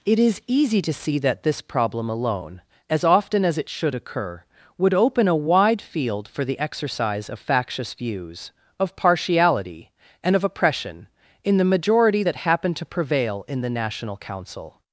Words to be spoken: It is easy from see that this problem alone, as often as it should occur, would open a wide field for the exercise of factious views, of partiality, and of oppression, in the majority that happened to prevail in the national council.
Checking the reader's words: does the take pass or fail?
fail